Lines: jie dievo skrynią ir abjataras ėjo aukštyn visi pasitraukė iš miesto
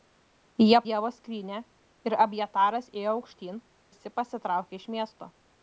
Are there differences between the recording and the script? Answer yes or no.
no